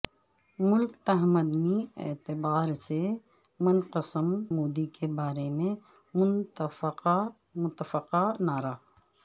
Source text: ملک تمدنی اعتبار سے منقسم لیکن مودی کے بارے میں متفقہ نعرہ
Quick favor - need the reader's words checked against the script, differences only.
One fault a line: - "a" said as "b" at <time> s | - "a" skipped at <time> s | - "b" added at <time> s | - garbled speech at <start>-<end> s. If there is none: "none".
- "لیکن" skipped at 4.3 s